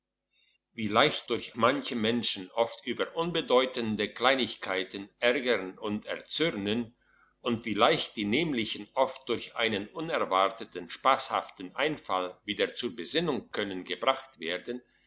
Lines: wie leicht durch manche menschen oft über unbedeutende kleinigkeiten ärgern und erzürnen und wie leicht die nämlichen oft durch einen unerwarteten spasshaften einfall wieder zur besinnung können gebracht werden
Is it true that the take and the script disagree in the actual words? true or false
false